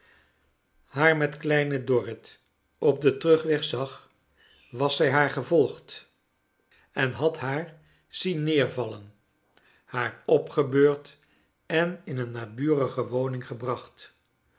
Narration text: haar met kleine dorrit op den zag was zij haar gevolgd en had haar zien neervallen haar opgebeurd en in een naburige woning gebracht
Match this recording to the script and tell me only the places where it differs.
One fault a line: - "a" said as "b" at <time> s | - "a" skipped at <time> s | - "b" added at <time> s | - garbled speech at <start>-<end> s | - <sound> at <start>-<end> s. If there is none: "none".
- "terugweg" added at 3.2 s